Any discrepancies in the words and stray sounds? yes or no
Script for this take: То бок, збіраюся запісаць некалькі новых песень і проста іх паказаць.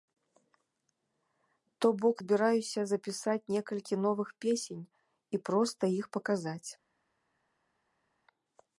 no